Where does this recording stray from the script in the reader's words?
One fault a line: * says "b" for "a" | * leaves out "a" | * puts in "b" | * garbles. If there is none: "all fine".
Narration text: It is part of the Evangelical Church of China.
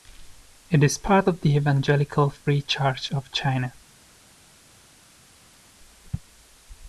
* puts in "Free"